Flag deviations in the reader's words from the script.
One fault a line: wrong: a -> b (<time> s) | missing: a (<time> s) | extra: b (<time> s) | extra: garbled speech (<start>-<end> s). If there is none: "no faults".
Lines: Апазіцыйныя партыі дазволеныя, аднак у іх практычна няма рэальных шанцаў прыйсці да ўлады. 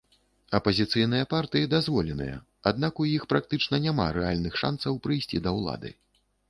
no faults